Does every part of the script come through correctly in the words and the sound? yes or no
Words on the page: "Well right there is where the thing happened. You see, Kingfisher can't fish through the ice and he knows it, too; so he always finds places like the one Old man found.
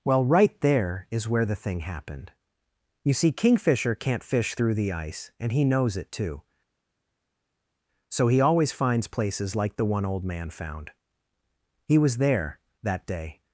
no